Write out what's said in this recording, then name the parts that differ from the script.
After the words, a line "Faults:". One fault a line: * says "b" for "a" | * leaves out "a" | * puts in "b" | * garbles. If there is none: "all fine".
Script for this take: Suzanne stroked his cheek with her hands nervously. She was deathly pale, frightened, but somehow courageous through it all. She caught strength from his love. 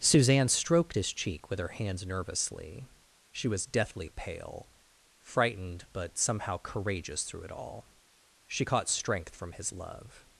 Suzanne stroked his cheek with her hands nervously. She was deathly pale, frightened, but somehow courageous through it all. She caught strength from his love.
Faults:
all fine